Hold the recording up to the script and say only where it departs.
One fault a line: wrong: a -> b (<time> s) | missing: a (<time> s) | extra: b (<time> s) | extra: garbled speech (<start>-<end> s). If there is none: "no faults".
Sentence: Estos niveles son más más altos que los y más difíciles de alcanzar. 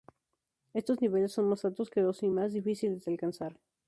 missing: más (1.6 s)